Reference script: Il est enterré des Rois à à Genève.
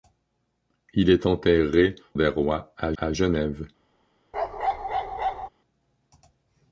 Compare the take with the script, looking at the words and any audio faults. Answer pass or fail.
fail